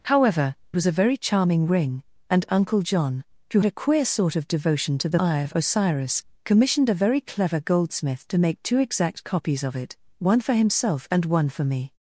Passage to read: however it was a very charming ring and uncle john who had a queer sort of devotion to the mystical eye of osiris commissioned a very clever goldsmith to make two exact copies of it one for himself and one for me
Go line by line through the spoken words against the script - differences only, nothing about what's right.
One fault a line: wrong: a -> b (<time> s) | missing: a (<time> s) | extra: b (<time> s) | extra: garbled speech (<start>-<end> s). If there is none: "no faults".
missing: it (0.6 s)
missing: had (3.6 s)
missing: mystical (5.2 s)